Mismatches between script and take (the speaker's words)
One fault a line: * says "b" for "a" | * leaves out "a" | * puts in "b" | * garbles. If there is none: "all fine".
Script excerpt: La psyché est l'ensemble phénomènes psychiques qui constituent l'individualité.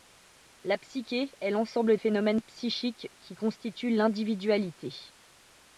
all fine